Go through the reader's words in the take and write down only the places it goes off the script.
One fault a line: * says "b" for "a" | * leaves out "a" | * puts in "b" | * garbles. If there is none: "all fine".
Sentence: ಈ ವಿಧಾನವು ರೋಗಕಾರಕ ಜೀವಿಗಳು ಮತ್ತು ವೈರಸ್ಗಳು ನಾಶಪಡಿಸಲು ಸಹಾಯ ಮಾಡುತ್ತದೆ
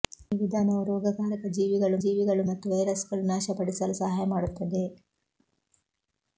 * puts in "ಜೀವಿಗಳು"